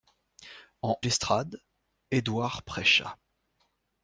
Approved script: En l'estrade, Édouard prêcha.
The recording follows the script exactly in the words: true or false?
true